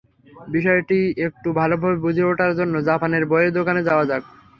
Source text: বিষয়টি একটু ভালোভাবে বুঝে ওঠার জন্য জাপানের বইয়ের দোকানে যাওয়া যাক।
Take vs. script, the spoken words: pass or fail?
pass